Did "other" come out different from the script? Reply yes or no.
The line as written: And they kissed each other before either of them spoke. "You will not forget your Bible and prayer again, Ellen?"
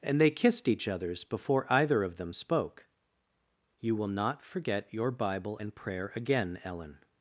yes